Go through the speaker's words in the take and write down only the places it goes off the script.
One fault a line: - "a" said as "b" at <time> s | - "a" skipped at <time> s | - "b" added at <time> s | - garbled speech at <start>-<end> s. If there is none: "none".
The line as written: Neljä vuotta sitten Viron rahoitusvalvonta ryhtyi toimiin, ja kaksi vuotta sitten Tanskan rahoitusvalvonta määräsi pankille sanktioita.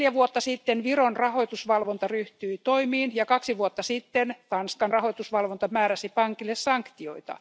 none